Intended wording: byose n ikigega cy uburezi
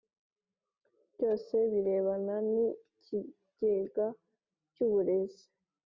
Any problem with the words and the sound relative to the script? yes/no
yes